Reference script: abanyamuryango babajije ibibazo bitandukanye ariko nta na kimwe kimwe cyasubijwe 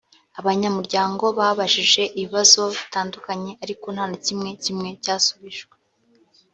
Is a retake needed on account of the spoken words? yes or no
no